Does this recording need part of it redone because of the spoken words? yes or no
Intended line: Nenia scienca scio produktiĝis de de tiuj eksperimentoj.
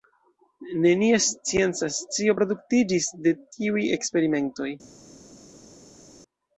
yes